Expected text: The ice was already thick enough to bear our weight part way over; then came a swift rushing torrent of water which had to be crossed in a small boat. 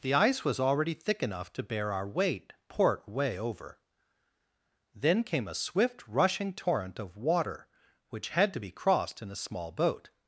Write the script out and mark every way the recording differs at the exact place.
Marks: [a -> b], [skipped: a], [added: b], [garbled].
The ice was already thick enough to bear our weight [part -> port] way over; then came a swift rushing torrent of water which had to be crossed in a small boat.